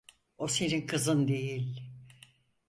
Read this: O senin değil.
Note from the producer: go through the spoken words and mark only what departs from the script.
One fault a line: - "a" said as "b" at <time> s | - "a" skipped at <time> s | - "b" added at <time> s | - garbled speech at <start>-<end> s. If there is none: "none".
- "kızın" added at 0.9 s